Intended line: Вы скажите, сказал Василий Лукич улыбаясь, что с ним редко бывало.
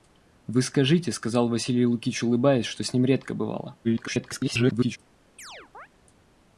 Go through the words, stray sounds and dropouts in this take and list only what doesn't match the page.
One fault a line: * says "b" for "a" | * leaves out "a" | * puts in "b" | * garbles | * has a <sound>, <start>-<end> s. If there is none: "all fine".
* garbles
* has a chirp, 5.4-5.9 s